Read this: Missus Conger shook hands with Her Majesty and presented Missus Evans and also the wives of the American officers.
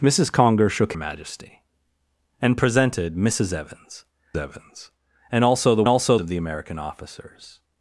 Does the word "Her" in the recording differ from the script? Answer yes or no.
yes